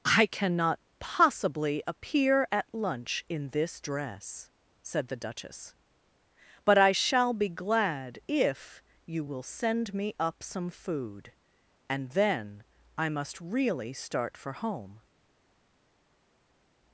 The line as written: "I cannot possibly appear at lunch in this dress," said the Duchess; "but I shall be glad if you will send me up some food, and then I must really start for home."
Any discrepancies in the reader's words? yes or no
no